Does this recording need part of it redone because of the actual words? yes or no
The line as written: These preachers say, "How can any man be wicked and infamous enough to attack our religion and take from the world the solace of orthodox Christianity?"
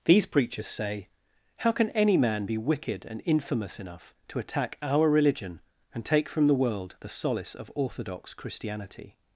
no